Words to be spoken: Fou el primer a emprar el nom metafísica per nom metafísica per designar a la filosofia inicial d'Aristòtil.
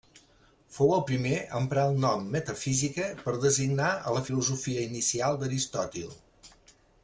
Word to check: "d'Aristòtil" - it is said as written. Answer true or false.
true